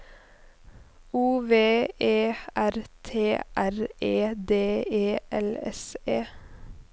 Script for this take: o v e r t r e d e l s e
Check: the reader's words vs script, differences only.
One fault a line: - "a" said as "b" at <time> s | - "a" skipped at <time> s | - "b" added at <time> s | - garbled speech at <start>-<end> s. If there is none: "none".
none